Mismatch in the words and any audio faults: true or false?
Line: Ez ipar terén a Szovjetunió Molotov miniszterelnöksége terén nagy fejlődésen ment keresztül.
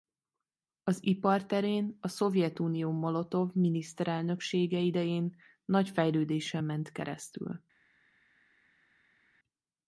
true